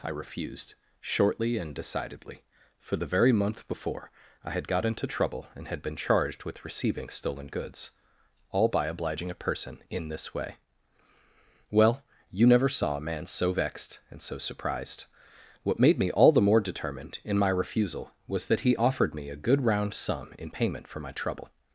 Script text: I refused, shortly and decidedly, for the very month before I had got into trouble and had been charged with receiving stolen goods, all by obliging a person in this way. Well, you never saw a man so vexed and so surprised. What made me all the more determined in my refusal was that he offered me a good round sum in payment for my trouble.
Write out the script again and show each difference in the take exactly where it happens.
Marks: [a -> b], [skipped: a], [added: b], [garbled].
I refused, shortly and decidedly, for the very month before I had got into trouble and had been charged with receiving stolen goods, all by obliging a person in this way. Well, you never saw a man so vexed and so surprised. What made me all the more determined in my refusal was that he offered me a good round sum in payment for my trouble.